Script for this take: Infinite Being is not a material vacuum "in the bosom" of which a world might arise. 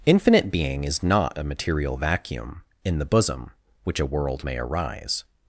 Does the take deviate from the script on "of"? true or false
true